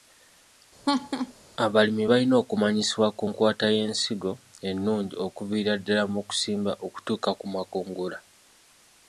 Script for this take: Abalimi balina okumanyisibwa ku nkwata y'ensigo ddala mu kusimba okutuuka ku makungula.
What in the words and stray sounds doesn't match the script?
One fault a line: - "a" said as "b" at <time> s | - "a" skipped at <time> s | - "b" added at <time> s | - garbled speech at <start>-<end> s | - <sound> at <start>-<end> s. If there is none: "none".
- laugh at 0.9-1.3 s
- "ennungi okuviira" added at 4.7 s